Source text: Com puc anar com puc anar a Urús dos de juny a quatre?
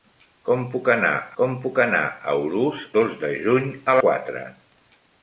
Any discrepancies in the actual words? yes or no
no